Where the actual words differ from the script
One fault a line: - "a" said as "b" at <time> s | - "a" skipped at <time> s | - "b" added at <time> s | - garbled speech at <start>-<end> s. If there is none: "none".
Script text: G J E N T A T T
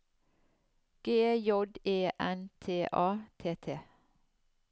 none